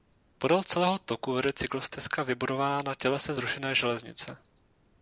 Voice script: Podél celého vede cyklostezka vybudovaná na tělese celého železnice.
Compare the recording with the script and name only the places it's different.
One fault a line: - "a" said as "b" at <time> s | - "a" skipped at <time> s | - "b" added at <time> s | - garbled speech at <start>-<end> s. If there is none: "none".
- "toku" added at 1.0 s
- "celého" said as "zrušené" at 3.3 s